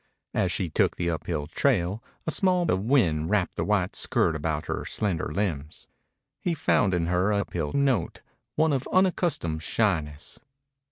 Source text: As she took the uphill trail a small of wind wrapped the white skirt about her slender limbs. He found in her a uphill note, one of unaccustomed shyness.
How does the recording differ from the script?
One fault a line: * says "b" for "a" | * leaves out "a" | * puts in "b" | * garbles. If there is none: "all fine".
all fine